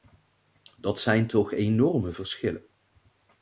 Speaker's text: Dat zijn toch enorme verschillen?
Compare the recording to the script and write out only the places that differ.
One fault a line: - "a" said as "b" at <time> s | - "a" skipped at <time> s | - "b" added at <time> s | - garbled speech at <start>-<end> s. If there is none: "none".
none